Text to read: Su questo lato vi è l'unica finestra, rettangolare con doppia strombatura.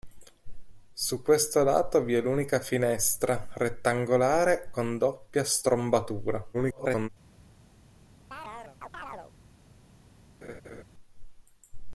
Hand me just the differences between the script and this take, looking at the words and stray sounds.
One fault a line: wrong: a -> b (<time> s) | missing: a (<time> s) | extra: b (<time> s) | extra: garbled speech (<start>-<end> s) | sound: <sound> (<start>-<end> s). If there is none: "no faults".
extra: garbled speech (6.5-7.1 s)
sound: chirp (8.3-9.3 s)
sound: laugh (10.4-10.8 s)